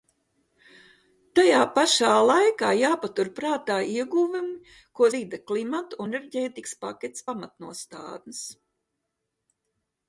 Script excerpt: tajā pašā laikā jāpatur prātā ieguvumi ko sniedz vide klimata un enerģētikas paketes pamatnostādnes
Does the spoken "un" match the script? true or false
false